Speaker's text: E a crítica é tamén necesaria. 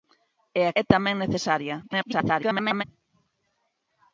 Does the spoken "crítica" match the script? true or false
false